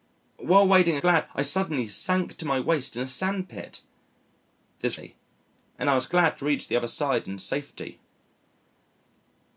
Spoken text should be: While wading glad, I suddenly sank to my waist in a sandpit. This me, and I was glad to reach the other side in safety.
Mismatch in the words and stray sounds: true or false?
false